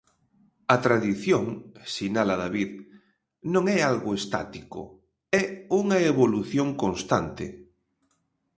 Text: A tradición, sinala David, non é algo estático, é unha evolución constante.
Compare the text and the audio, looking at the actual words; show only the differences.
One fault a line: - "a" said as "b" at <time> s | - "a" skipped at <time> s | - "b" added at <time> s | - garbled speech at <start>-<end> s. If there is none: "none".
none